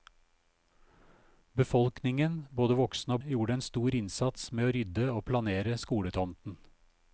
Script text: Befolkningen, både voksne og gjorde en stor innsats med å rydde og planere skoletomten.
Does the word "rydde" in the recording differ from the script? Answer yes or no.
no